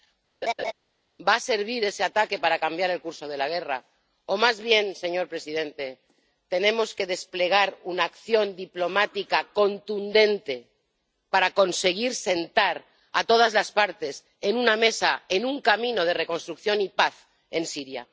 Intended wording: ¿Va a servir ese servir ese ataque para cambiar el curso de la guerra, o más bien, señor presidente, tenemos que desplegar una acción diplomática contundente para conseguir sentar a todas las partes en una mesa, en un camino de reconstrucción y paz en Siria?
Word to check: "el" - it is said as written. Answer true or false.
true